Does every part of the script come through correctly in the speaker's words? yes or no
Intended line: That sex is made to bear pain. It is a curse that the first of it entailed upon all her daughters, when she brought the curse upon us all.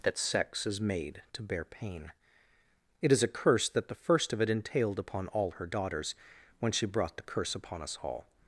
yes